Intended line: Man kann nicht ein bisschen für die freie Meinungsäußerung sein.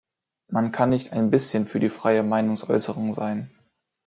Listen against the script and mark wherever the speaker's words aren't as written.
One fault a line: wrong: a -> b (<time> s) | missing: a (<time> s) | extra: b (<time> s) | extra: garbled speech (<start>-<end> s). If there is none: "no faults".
no faults